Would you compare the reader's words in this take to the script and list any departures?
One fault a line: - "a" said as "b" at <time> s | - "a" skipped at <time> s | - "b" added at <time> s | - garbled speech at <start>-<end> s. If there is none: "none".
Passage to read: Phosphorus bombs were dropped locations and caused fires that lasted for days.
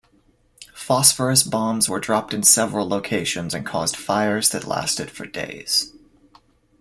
- "in several" added at 2.3 s